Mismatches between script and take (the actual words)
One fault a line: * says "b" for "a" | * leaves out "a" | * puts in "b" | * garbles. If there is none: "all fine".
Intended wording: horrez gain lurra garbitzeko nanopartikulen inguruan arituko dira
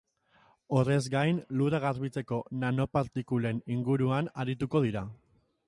all fine